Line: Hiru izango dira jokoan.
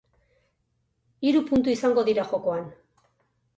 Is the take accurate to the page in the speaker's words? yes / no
no